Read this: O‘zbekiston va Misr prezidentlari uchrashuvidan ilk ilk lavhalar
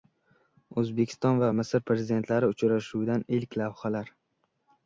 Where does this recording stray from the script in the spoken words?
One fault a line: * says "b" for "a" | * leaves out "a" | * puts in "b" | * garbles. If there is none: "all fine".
* leaves out "ilk"